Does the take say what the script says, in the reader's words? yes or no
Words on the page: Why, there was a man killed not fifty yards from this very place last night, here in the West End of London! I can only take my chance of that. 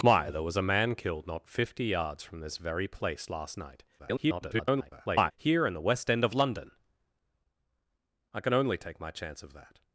no